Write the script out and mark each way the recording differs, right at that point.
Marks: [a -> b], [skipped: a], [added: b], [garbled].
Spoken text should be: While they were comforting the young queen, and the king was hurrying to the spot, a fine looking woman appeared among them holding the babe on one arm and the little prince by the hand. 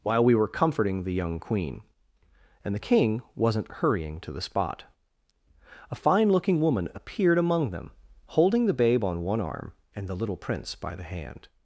While [they -> we] were comforting the young queen, and the king [was -> wasn't] hurrying to the spot, a fine looking woman appeared among them holding the babe on one arm and the little prince by the hand.